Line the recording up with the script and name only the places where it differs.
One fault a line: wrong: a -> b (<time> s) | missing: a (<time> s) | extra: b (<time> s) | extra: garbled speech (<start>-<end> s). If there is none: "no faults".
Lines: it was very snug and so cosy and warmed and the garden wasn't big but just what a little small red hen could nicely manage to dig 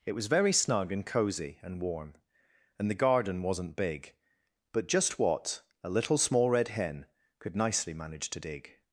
missing: so (1.1 s)
wrong: warmed -> warm (1.8 s)